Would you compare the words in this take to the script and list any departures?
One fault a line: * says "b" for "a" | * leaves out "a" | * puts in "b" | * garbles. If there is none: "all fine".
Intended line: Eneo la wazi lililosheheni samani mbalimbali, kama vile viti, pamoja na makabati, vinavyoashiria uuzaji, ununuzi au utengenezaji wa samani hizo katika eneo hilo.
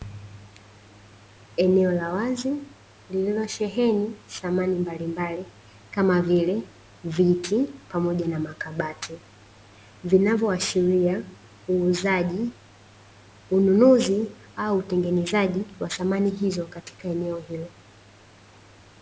all fine